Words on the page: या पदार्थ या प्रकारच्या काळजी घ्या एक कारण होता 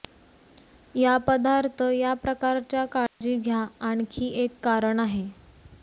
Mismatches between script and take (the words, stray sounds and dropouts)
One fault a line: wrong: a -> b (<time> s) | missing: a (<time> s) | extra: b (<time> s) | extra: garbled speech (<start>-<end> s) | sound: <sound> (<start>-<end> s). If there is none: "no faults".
sound: dropout (3.1-3.2 s)
extra: आणखी (3.8 s)
wrong: होता -> आहे (5.0 s)